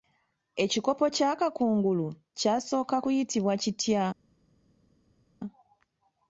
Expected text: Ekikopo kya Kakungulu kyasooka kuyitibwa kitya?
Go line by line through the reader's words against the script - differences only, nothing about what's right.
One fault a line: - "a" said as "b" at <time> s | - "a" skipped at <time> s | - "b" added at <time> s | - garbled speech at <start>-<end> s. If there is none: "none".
none